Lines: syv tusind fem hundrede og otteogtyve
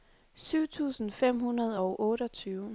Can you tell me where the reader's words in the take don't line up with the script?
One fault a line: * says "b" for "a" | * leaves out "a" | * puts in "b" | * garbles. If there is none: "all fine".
all fine